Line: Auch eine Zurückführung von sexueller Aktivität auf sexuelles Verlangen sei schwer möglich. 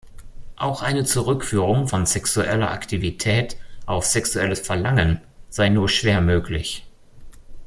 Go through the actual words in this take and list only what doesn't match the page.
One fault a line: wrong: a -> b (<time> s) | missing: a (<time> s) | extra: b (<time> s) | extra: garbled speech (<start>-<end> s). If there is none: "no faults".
extra: nur (5.7 s)